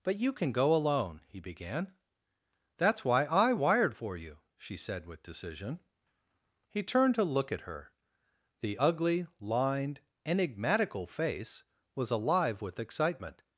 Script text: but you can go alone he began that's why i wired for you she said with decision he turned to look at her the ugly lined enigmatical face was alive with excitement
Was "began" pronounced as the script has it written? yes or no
yes